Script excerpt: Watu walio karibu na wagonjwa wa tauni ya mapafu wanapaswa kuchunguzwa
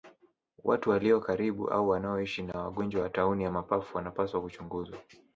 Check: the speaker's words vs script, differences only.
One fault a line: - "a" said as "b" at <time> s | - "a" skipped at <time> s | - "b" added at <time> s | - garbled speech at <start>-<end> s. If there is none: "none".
- "au wanaoishi" added at 1.7 s